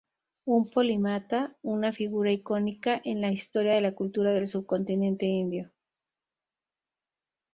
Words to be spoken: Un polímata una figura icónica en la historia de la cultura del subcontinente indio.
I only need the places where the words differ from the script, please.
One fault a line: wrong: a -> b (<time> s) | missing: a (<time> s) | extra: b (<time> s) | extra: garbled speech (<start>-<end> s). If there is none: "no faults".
no faults